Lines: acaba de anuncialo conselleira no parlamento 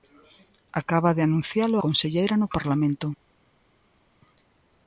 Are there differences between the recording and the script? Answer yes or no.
no